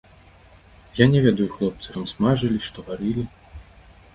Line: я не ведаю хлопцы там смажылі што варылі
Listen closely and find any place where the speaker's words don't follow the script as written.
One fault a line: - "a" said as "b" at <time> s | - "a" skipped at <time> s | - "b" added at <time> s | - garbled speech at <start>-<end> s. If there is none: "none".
none